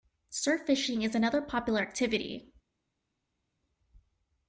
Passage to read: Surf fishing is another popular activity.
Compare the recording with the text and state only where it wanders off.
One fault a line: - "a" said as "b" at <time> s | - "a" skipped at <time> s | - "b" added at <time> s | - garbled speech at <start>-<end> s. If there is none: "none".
none